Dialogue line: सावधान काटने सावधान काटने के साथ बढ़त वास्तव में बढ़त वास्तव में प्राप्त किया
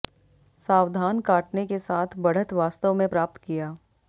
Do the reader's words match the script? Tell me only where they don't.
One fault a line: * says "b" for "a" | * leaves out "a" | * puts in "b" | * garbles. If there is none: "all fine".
* leaves out "सावधान काटने"
* leaves out "बढ़त वास्तव में"